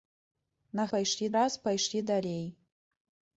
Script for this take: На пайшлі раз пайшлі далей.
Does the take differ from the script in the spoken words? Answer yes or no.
no